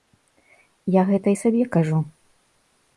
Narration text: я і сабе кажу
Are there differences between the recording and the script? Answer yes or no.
yes